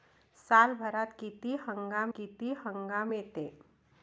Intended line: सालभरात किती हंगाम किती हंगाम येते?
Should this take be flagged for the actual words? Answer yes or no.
no